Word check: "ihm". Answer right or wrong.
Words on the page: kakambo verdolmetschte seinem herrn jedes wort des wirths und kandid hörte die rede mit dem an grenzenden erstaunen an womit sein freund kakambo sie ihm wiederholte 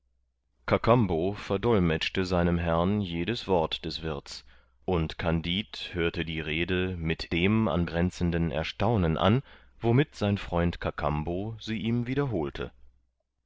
right